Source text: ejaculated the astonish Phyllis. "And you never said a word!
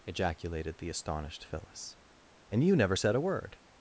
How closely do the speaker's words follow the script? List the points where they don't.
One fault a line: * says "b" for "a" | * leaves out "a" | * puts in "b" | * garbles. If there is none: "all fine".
* says "astonished" for "astonish"